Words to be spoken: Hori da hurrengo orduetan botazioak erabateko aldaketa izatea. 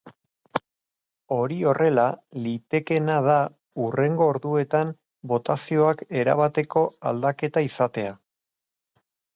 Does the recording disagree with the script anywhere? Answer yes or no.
yes